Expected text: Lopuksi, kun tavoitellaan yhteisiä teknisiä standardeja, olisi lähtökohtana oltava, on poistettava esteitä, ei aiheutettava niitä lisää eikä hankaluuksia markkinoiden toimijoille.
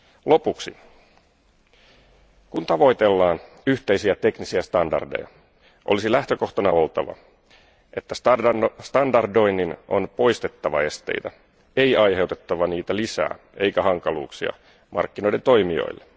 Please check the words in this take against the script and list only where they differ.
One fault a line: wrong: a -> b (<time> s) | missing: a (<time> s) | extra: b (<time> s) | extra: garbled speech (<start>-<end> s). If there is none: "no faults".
extra: että standardoinnin (8.0 s)